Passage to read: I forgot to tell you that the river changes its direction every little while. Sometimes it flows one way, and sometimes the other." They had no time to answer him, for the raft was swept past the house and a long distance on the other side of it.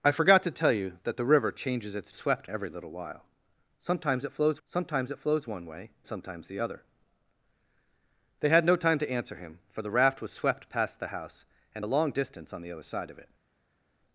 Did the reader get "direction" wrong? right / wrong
wrong